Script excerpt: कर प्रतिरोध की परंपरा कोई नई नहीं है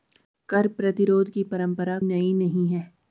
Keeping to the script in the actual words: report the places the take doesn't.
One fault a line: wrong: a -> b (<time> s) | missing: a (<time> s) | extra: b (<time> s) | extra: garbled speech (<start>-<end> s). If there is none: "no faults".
missing: कोई (2.0 s)